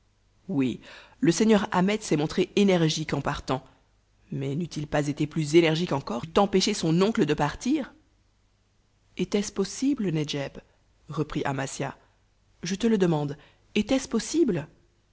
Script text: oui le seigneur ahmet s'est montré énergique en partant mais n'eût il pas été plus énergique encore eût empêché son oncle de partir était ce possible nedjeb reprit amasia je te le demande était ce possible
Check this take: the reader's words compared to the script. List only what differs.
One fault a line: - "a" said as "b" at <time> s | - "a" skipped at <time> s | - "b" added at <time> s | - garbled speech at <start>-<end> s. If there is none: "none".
none